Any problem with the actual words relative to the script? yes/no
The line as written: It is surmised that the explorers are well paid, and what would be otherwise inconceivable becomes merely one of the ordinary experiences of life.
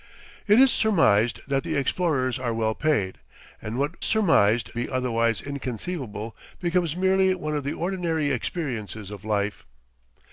yes